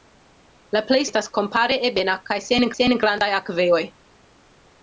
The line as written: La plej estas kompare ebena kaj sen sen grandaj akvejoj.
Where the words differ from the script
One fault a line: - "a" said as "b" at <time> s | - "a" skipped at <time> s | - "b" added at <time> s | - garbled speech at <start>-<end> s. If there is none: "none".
none